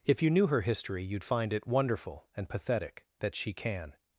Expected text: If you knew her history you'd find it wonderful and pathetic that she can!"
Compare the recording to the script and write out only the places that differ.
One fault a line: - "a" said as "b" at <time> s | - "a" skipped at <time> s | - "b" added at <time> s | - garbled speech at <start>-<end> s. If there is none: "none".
none